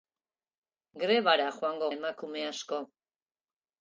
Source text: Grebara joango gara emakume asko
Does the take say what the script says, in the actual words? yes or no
no